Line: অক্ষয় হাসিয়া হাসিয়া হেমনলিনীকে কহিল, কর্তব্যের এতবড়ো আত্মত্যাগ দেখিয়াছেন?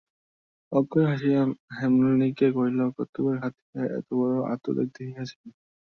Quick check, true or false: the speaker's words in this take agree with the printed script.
false